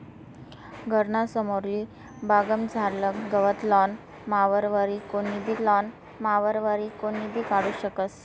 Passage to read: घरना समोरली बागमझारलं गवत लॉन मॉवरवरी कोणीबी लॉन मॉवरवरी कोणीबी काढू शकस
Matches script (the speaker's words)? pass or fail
pass